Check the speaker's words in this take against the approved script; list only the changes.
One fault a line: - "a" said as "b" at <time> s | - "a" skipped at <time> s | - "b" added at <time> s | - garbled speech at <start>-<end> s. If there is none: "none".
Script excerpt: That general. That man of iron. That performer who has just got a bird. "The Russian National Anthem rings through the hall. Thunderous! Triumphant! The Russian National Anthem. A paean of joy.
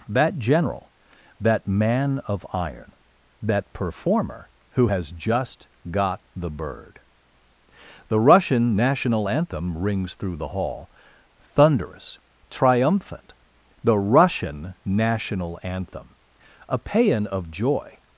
- "a" said as "the" at 6.4 s